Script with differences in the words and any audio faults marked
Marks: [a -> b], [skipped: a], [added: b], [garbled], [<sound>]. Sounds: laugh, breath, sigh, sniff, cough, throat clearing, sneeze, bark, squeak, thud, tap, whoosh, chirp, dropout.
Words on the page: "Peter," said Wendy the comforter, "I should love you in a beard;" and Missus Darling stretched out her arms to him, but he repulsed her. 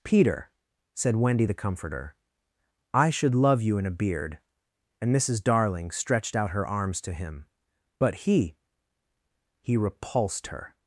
"Peter," said Wendy the comforter, "I should love you in a beard;" and Missus Darling stretched out her arms to him, but he [added: he] repulsed her.